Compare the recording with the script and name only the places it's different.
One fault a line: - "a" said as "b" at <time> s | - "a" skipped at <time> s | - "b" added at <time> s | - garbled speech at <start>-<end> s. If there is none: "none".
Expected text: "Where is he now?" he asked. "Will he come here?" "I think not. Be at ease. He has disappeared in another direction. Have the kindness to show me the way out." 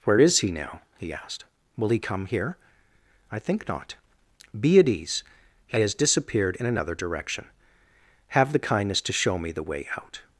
none